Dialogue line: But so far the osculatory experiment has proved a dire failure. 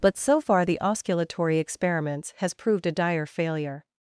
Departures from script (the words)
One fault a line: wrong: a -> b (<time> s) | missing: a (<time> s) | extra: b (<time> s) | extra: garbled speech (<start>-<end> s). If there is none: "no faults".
wrong: experiment -> experiments (1.6 s)